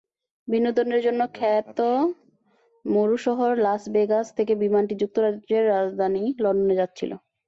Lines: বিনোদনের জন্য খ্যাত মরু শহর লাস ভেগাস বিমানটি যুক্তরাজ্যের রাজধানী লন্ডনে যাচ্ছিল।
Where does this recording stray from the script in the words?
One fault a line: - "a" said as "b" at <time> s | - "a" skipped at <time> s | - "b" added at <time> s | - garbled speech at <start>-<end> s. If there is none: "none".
- "থেকে" added at 4.4 s